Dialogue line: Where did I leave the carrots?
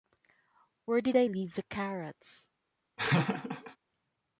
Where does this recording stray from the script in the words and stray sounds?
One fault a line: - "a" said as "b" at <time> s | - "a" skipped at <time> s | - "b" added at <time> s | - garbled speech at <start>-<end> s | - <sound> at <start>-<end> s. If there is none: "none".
- laugh at 3.0-3.8 s